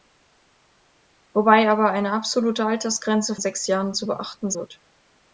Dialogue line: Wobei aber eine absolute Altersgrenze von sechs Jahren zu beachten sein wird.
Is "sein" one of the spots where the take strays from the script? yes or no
yes